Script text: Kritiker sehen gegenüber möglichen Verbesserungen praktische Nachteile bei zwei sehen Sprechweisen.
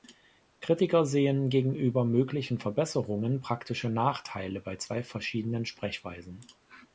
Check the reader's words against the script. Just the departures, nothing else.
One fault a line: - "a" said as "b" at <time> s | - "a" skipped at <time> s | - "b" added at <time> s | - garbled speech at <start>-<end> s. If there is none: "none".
- "sehen" said as "verschiedenen" at 5.0 s